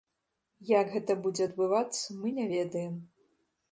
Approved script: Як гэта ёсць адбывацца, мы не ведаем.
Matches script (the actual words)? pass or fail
fail